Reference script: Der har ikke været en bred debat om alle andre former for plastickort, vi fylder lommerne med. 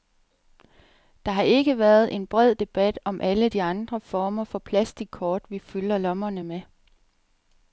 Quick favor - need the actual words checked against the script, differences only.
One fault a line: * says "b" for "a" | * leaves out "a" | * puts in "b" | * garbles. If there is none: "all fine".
* puts in "de"